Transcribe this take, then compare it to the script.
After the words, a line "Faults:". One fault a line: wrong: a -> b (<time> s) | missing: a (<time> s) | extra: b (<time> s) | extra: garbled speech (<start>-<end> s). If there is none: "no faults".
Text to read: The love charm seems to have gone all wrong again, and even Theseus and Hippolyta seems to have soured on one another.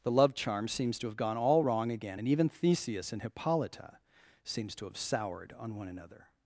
The love charm seems to have gone all wrong again, and even Theseus and Hippolyta seems to have soured on one another.
Faults:
no faults